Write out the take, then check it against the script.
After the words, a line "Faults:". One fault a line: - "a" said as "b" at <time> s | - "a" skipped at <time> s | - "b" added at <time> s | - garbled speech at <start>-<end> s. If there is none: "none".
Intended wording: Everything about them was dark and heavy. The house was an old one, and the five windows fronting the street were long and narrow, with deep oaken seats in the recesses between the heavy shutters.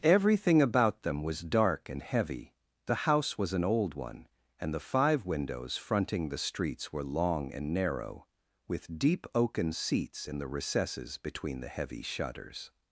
Everything about them was dark and heavy. The house was an old one, and the five windows fronting the streets were long and narrow, with deep oaken seats in the recesses between the heavy shutters.
Faults:
- "street" said as "streets" at 6.4 s